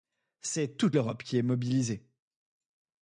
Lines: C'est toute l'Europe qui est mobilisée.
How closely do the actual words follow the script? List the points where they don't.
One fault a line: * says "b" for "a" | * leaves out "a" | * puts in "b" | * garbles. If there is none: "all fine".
all fine